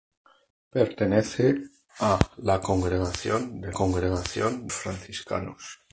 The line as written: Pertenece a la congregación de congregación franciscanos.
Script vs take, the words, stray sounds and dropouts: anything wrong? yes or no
no